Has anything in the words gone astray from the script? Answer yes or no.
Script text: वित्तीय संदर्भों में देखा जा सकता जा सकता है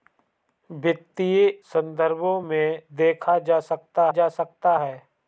no